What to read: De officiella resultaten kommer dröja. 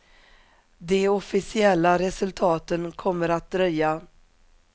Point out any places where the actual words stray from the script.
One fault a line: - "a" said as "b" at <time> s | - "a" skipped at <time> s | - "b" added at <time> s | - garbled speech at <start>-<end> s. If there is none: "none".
- "att" added at 3.3 s